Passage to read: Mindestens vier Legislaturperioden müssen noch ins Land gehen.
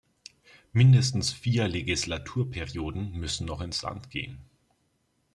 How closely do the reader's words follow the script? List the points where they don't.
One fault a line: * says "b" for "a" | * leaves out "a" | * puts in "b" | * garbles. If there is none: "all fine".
all fine